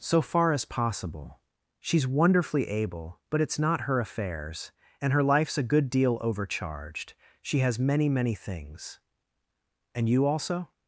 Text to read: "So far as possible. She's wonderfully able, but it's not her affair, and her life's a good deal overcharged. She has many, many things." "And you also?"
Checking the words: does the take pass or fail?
fail